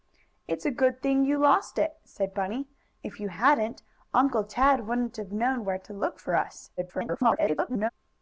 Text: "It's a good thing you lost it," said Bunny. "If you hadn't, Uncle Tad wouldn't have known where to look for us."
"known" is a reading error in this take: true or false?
false